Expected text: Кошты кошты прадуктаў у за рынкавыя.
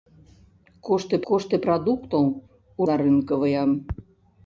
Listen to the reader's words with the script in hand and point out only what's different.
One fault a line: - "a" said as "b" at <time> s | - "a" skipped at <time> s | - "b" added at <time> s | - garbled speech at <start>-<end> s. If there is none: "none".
none